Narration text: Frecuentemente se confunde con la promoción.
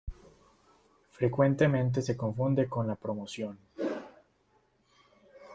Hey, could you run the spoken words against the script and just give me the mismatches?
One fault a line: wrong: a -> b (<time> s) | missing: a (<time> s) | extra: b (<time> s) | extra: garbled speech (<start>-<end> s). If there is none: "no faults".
no faults